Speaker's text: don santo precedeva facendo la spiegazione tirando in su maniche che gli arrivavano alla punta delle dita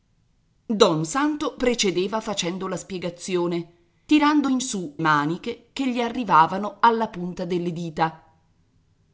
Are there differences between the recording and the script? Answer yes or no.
no